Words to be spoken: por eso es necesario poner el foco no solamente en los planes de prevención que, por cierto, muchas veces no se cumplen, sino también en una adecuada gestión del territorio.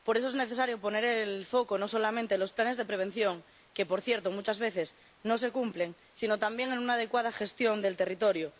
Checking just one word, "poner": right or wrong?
right